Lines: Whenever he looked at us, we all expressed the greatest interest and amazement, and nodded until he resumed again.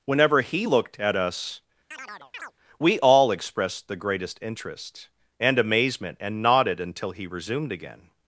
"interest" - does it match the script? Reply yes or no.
yes